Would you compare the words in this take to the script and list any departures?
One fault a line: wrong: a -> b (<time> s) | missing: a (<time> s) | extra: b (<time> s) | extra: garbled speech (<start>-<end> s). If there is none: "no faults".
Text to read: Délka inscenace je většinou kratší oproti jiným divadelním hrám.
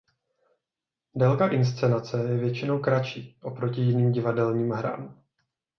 no faults